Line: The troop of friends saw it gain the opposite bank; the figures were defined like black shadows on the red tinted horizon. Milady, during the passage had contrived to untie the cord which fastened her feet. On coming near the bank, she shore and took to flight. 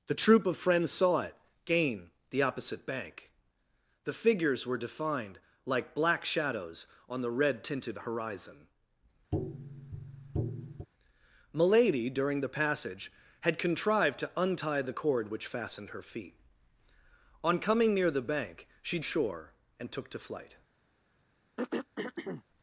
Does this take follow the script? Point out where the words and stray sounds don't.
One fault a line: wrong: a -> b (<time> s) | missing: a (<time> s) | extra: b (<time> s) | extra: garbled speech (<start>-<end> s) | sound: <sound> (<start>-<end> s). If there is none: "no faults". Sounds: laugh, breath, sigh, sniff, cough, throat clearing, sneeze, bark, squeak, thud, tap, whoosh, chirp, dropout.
sound: tap (9.3-10.9 s)
sound: throat clearing (21.6-22.4 s)